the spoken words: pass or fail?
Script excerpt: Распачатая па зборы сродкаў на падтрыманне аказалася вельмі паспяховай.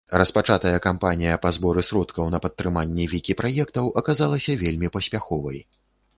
fail